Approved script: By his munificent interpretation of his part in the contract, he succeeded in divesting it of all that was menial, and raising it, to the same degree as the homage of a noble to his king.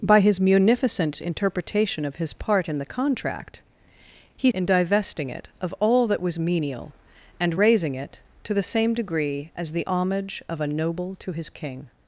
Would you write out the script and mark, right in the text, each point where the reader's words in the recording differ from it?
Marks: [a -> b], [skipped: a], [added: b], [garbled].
By his munificent interpretation of his part in the contract, he [skipped: succeeded] in divesting it of all that was menial, and raising it, to the same degree as the homage of a noble to his king.